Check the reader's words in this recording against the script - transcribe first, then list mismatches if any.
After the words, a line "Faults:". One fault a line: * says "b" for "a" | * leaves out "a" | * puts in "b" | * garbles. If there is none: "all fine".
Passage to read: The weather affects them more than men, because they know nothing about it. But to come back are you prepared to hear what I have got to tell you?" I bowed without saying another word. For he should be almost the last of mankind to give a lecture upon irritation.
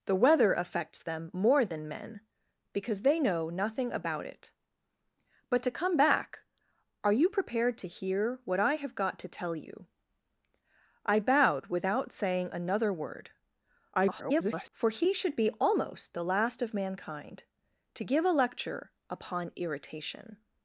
The weather affects them more than men, because they know nothing about it. But to come back are you prepared to hear what I have got to tell you?" I bowed without saying another word. [garbled] For he should be almost the last of mankind to give a lecture upon irritation.
Faults:
* garbles